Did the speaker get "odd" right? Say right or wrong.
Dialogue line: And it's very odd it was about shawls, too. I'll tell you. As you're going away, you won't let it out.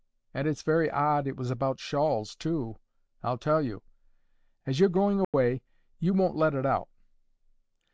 right